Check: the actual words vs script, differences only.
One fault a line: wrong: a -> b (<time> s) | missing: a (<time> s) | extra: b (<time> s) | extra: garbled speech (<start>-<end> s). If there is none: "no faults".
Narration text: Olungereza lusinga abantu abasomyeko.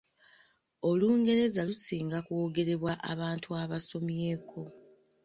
extra: kwogerebwa (2.2 s)